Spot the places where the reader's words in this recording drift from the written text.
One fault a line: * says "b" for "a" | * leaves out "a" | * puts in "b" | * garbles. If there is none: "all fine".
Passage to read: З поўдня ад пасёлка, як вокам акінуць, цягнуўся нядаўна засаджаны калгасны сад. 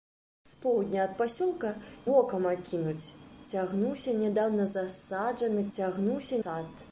* leaves out "як"
* says "цягнуўся" for "калгасны"